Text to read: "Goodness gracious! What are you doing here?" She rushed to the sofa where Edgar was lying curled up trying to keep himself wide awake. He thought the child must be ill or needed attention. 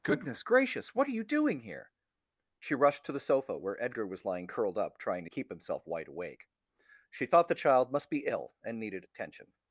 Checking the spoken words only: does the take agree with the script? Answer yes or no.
no